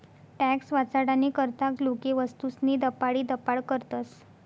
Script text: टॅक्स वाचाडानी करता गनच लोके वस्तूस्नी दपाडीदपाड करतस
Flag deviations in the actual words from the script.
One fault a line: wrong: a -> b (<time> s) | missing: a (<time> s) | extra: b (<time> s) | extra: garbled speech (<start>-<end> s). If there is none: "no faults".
missing: गनच (1.7 s)